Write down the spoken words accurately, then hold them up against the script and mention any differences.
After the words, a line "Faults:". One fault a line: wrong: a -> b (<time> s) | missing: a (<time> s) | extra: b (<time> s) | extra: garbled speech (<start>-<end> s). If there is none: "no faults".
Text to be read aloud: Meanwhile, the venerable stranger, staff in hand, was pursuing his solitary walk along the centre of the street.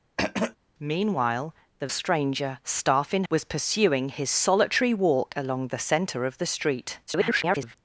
Meanwhile, the stranger, staff in was pursuing his solitary walk along the centre of the street. [garbled]
Faults:
missing: venerable (1.9 s)
missing: hand (3.2 s)
extra: garbled speech (7.1-7.7 s)